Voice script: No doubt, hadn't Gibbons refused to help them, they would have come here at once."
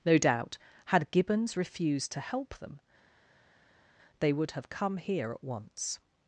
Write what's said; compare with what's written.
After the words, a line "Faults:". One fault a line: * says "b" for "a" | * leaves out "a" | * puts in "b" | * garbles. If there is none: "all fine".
No doubt, had Gibbons refused to help them, they would have come here at once."
Faults:
* says "had" for "hadn't"